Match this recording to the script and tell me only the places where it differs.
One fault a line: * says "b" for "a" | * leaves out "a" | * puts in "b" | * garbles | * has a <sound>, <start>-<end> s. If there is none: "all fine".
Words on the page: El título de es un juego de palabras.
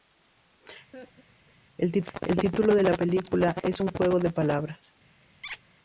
* has a laugh, 0.9-1.6 s
* puts in "la película"
* has a squeak, 5.4-5.6 s